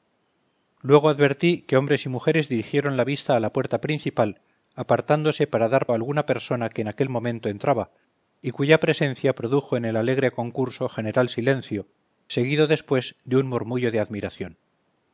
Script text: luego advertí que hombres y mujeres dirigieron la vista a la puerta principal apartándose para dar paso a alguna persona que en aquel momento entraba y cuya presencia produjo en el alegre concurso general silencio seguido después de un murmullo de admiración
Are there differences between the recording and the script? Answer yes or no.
yes